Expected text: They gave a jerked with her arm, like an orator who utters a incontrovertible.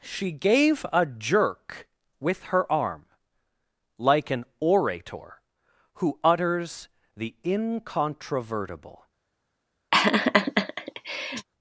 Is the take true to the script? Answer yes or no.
no